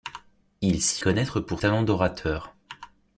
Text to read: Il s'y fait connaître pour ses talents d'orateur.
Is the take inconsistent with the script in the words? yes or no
yes